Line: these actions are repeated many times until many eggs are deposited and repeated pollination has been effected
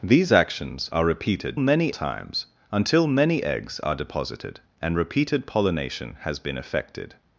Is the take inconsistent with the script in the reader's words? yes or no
no